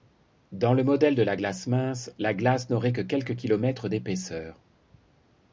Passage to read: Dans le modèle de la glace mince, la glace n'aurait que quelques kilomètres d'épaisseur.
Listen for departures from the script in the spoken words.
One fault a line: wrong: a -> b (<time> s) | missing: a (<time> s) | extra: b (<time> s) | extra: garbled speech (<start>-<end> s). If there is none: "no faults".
no faults